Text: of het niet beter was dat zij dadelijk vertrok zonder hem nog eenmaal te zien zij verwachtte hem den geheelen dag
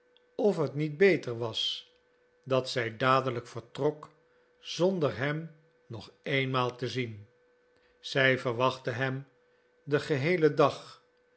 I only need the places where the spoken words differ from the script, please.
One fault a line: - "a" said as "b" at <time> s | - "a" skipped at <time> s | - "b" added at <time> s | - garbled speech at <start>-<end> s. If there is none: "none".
none